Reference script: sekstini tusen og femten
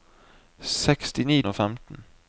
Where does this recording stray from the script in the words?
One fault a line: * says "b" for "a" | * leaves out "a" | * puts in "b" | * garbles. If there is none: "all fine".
* leaves out "tusen"